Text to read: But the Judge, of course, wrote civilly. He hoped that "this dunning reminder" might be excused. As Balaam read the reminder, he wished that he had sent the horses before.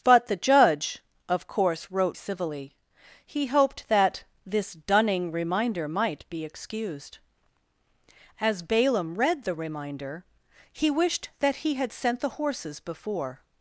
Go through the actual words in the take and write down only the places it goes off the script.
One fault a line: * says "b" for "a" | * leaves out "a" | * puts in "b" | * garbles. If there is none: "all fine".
all fine